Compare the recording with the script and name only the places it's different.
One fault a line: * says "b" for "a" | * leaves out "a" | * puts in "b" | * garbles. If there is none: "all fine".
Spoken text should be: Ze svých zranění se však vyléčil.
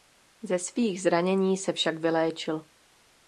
all fine